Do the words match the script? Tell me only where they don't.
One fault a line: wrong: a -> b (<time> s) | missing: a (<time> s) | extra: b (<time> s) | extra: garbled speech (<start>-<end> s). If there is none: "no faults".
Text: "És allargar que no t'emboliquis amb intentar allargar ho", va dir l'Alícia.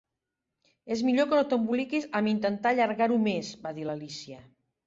wrong: allargar -> millor (1.1 s)
extra: més (3.3 s)